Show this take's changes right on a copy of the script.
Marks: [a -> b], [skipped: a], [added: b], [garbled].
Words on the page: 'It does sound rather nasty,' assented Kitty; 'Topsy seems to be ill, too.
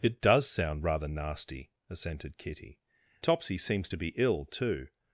'It does sound rather nasty,' assented Kitty; 'Topsy seems to be ill, too.